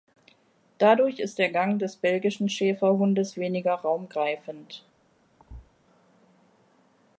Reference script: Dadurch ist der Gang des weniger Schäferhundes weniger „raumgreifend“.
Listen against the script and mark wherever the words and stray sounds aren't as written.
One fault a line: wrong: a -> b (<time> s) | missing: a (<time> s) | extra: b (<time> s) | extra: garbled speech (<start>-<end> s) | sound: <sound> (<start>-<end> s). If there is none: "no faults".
wrong: weniger -> belgischen (2.0 s)
sound: thud (5.4-5.7 s)